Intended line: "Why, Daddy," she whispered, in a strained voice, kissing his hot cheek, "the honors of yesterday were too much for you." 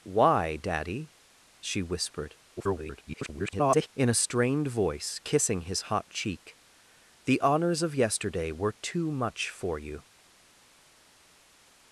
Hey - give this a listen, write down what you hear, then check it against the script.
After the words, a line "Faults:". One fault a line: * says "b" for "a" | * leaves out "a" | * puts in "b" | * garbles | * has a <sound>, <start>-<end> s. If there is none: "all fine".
"Why, Daddy," she whispered, [garbled] in a strained voice, kissing his hot cheek, "the honors of yesterday were too much for you."
Faults:
* garbles